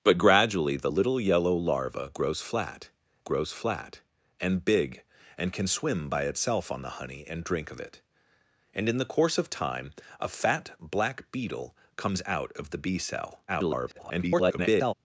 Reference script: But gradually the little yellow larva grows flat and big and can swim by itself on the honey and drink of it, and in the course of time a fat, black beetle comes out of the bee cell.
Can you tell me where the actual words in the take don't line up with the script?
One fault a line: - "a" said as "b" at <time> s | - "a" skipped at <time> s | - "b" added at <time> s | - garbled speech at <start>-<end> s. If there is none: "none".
- "grows flat" added at 3.2 s
- garbled speech at 13.5-14.9 s